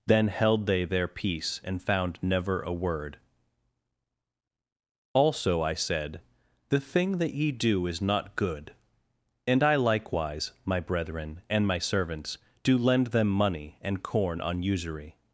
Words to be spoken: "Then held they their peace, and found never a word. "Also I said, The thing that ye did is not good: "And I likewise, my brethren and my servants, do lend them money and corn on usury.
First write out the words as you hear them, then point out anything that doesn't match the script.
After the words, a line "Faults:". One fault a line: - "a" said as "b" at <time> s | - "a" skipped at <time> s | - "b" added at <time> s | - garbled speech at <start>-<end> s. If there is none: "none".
"Then held they their peace, and found never a word. "Also I said, The thing that ye do is not good: "And I likewise, my brethren and my servants, do lend them money and corn on usury.
Faults:
- "did" said as "do" at 7.5 s